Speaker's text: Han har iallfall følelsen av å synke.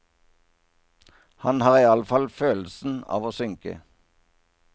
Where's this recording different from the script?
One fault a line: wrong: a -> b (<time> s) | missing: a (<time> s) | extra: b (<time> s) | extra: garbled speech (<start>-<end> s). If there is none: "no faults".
no faults